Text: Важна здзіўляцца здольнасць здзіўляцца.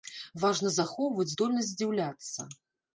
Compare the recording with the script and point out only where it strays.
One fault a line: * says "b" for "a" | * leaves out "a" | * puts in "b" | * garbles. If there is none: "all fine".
* says "захоўваць" for "здзіўляцца"